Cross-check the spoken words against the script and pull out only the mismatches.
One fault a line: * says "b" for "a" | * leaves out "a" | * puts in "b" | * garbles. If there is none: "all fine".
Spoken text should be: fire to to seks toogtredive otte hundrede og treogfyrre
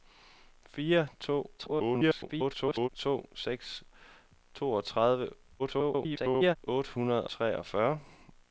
* garbles
* garbles
* leaves out "og"